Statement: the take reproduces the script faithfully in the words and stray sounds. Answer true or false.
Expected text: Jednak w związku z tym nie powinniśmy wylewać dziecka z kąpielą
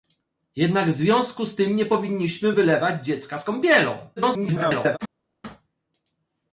false